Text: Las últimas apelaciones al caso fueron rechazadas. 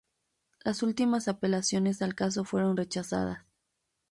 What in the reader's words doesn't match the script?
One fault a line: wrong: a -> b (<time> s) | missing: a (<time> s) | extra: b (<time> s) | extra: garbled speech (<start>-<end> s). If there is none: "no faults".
no faults